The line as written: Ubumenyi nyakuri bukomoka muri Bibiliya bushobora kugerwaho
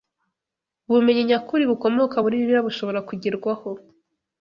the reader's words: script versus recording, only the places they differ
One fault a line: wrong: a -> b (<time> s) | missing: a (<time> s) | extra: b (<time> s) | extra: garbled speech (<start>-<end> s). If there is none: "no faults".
no faults